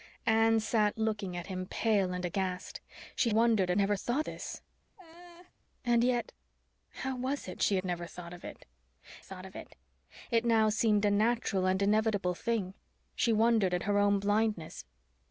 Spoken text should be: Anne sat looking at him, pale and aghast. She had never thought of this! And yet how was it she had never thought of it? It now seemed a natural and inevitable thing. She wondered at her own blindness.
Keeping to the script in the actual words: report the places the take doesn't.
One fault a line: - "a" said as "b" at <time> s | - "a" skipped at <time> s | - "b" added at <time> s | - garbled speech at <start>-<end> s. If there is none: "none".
- "had" said as "wondered" at 3.3 s
- "of" skipped at 4.3 s
- "thought of it" added at 9.2 s